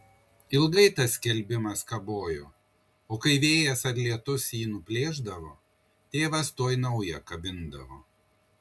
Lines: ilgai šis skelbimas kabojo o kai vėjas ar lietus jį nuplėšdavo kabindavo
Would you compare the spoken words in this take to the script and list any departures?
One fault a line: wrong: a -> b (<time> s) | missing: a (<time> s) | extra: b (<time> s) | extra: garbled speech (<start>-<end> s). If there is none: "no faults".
wrong: šis -> tas (1.0 s)
extra: tėvas tuoj naują (6.2 s)